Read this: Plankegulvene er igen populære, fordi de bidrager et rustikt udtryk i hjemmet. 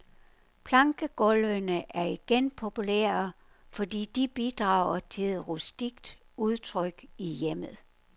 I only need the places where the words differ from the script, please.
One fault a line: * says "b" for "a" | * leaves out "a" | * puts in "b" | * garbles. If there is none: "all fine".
* puts in "til"